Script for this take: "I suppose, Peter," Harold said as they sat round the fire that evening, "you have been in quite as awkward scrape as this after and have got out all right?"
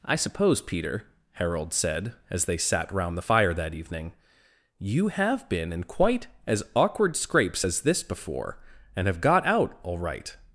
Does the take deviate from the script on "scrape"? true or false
true